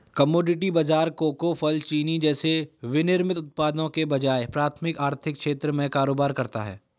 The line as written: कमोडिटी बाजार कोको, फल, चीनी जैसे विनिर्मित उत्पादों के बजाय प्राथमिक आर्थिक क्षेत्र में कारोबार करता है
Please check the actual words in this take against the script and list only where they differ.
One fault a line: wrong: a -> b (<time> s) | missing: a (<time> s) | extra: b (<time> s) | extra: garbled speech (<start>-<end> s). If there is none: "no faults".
no faults